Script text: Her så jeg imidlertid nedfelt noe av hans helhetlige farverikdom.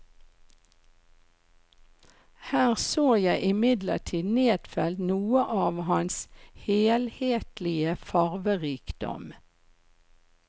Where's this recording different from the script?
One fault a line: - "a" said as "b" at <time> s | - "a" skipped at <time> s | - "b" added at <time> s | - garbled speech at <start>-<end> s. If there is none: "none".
none